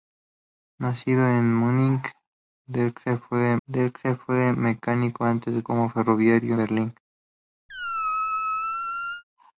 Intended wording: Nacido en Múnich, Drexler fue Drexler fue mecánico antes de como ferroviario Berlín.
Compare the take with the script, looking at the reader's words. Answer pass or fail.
pass